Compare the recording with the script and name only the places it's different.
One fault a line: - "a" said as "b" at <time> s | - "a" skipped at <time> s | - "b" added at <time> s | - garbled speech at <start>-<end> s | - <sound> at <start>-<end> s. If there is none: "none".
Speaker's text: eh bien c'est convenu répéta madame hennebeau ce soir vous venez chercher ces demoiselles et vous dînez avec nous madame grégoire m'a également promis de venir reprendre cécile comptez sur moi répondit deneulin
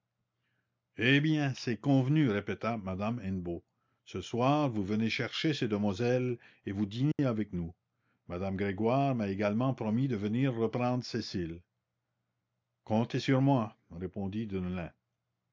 - dropout at 7.1-7.2 s